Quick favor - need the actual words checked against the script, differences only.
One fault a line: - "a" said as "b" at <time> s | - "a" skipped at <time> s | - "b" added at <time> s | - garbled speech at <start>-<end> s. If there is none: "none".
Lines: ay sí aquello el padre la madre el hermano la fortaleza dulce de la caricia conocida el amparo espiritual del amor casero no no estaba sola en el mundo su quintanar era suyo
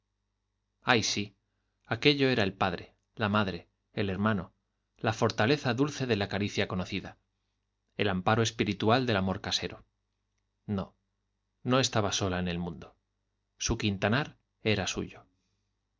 - "era" added at 2.3 s